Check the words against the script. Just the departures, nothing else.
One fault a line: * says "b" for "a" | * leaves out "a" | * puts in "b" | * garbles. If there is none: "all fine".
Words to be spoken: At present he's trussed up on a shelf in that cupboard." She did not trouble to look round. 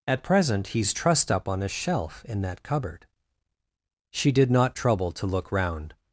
all fine